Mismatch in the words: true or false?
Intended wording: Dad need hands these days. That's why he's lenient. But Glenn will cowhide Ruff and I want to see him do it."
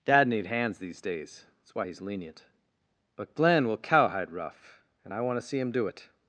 false